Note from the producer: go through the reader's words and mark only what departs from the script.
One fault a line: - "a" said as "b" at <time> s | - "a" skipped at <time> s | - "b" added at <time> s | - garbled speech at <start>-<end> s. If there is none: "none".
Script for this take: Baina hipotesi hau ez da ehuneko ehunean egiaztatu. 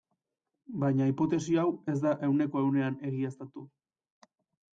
none